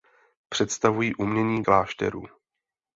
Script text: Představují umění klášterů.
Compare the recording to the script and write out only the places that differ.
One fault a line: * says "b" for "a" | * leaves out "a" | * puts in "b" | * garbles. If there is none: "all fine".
all fine